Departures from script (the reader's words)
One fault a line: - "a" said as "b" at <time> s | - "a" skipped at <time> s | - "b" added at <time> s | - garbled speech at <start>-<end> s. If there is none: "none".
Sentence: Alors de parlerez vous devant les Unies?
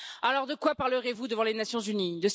- "quoi" added at 0.6 s
- "Nations" added at 1.5 s